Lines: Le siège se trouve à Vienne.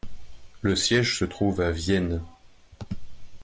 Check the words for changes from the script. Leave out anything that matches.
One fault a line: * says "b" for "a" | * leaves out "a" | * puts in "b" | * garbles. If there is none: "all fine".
all fine